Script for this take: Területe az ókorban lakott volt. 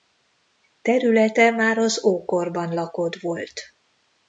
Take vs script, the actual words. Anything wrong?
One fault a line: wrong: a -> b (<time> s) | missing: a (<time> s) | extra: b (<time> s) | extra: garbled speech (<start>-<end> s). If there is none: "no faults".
extra: már (1.5 s)